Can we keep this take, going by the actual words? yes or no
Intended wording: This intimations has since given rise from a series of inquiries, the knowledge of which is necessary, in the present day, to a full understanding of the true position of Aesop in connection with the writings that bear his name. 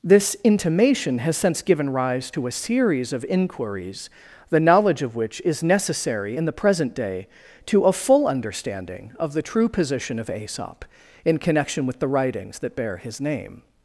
no